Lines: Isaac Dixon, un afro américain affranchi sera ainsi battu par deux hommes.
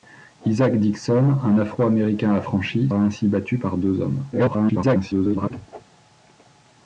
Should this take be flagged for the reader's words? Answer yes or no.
yes